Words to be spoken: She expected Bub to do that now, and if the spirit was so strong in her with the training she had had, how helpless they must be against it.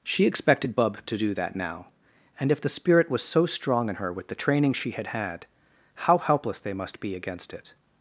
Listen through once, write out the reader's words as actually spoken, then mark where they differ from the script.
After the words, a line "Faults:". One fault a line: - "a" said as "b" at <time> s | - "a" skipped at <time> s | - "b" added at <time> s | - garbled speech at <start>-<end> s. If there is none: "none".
She expected Bub to do that now, and if the spirit was so strong in her with the training she had had, how helpless they must be against it.
Faults:
none